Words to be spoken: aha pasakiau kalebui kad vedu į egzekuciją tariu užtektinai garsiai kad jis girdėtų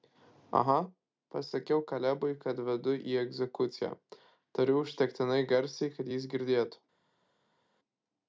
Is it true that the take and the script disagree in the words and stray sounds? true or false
false